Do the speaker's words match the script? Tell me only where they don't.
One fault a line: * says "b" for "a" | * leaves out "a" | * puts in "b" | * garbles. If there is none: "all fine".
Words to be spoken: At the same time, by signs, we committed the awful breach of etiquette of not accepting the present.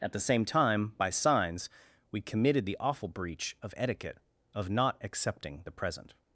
all fine